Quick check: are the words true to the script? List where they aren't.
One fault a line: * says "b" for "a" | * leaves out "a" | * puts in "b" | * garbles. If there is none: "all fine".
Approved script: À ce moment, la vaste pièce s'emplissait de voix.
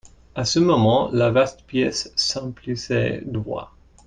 all fine